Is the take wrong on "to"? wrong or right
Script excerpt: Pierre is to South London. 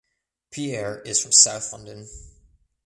wrong